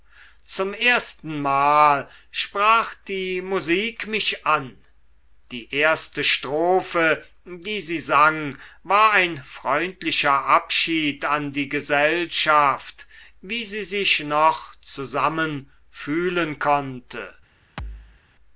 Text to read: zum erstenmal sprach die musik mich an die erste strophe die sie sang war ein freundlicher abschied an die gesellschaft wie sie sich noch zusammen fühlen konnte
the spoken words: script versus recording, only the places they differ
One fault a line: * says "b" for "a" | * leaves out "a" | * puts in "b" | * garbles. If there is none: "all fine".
all fine